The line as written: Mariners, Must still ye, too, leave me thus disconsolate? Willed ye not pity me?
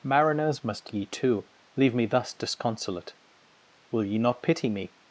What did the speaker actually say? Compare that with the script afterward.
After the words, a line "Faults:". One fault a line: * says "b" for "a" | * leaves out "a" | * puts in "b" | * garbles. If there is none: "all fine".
Mariners, Must ye, too, leave me thus disconsolate? Will ye not pity me?
Faults:
* leaves out "still"
* says "Will" for "Willed"